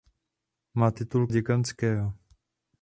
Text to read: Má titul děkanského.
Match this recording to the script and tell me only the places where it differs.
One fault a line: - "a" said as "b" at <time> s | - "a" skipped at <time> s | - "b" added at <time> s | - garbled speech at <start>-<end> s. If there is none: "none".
none